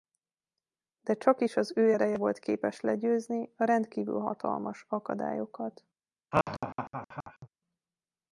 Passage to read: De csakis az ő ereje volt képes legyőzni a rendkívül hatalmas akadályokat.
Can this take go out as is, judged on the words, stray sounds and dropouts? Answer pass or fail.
fail